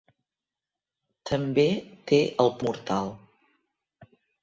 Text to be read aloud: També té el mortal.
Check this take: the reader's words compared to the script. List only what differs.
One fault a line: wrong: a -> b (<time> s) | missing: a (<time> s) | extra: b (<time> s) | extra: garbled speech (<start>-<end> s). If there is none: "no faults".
no faults